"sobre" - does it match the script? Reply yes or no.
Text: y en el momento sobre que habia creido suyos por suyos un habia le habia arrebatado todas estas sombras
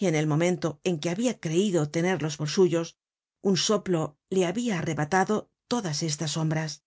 no